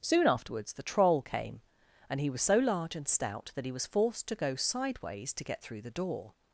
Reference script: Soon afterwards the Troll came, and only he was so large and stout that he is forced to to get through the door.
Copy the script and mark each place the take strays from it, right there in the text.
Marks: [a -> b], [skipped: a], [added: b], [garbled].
Soon afterwards the Troll came, and [skipped: only] he was so large and stout that he [is -> was] forced to [added: go sideways] to get through the door.